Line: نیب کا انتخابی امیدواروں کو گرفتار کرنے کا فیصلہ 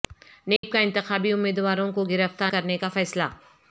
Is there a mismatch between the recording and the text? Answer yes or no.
no